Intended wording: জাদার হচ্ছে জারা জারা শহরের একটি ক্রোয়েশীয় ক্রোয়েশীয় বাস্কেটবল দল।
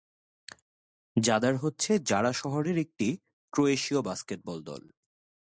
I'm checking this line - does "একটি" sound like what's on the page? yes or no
yes